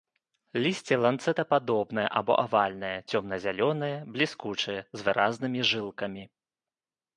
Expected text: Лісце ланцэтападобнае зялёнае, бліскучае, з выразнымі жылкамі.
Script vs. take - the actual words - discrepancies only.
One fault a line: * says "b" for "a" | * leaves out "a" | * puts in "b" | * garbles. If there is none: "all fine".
* puts in "або авальнае цёмна"